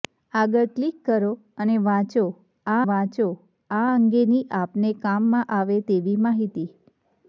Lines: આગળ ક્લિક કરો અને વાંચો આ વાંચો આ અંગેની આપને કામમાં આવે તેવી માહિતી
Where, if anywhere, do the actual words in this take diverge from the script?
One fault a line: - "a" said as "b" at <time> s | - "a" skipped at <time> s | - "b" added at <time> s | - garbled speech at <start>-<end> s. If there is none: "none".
none